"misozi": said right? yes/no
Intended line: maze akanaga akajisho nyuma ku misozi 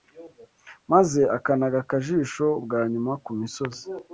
yes